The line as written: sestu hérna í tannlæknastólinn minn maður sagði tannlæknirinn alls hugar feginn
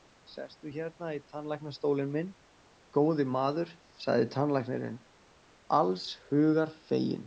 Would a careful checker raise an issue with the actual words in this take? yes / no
yes